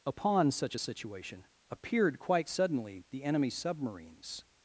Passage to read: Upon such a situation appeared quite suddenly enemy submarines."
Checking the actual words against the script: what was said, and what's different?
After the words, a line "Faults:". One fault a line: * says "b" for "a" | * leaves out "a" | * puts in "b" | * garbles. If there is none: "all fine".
Upon such a situation appeared quite suddenly the enemy submarines."
Faults:
* puts in "the"